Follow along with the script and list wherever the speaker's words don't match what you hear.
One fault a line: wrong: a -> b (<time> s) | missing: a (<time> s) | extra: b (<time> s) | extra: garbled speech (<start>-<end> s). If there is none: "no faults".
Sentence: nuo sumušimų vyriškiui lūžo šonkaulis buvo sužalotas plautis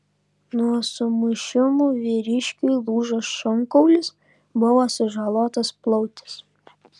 no faults